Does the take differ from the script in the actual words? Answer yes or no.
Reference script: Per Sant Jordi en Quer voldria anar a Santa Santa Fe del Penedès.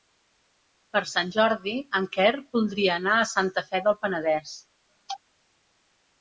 yes